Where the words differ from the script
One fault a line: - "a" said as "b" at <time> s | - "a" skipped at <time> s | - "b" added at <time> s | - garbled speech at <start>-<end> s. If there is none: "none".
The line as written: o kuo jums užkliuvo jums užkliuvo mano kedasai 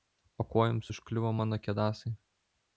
- "jums užkliuvo" skipped at 1.3 s